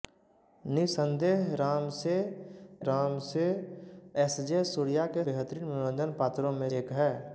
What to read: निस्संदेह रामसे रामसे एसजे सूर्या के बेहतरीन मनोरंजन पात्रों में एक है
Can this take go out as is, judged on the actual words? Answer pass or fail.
pass